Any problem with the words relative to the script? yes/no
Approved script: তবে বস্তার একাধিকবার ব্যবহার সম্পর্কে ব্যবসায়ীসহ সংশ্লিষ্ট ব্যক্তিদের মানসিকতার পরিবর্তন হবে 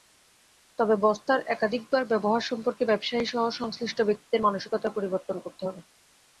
yes